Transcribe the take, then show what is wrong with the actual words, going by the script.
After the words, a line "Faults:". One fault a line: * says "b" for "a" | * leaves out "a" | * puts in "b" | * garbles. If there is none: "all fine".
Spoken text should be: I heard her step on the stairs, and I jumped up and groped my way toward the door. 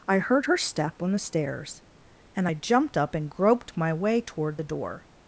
I heard her step on the stairs, and I jumped up and groped my way toward the door.
Faults:
all fine